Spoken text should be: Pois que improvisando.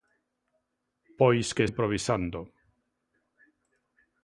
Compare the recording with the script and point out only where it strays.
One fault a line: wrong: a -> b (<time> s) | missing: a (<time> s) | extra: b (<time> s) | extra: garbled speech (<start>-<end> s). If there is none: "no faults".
no faults